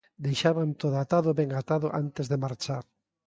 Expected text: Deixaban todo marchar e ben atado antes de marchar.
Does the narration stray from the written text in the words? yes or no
yes